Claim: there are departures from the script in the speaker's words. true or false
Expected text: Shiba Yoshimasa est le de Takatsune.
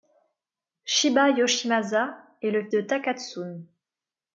false